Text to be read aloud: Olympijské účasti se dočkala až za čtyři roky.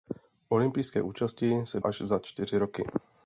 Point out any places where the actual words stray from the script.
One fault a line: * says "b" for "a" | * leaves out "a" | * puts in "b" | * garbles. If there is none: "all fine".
* leaves out "dočkala"